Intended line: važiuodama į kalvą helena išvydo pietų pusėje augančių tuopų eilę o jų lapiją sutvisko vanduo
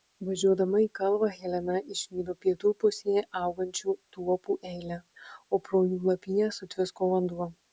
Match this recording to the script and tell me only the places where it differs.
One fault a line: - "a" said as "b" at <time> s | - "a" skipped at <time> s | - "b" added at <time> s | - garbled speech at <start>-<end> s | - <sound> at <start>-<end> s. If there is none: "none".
- "pro" added at 5.7 s